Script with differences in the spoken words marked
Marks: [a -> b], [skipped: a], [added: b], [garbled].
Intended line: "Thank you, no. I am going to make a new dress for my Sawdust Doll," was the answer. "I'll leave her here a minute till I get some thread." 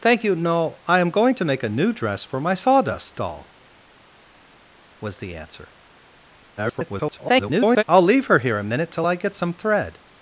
"Thank you, no. I am going to make a new dress for my Sawdust Doll," was the answer. [garbled] "I'll leave her here a minute till I get some thread."